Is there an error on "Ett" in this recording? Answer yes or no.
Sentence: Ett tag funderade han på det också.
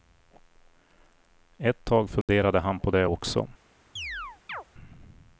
no